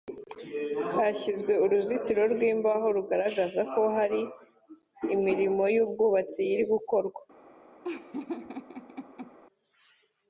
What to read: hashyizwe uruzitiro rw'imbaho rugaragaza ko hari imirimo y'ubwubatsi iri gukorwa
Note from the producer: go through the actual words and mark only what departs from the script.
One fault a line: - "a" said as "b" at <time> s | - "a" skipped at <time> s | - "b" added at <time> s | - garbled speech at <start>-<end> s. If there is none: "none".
none